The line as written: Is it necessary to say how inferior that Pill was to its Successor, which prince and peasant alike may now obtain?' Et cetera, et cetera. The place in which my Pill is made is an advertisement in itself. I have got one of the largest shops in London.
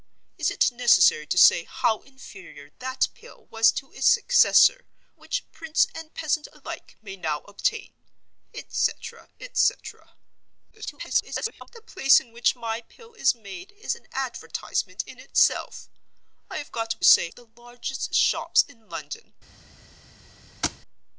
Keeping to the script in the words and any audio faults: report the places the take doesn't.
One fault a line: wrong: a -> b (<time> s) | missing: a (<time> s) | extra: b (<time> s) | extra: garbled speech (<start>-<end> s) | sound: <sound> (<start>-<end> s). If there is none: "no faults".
extra: garbled speech (10.7-11.7 s)
wrong: one -> say (17.0 s)
sound: thud (20.6-20.8 s)